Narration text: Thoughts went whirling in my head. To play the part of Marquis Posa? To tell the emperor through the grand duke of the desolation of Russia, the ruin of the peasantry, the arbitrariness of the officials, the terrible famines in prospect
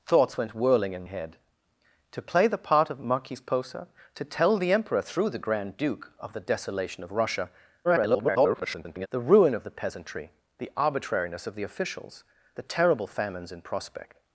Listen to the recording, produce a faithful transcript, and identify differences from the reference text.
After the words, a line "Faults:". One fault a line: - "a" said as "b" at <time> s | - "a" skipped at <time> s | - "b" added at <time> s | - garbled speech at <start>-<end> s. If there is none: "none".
Thoughts went whirling in head. To play the part of Marquis Posa? To tell the emperor through the grand duke of the desolation of Russia, [garbled] the ruin of the peasantry, the arbitrariness of the officials, the terrible famines in prospect
Faults:
- "my" skipped at 1.1 s
- garbled speech at 7.8-9.1 s